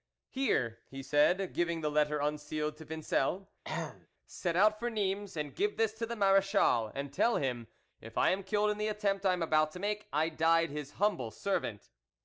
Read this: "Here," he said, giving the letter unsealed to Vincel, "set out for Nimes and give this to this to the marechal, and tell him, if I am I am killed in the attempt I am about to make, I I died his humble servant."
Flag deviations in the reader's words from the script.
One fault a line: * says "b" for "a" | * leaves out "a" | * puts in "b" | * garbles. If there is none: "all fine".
* leaves out "this to"
* leaves out "I am"
* leaves out "I"